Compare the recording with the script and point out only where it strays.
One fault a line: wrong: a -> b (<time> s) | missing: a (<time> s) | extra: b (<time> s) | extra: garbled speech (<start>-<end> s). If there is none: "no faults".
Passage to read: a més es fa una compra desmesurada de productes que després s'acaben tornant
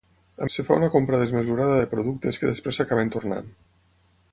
missing: més (0.5 s)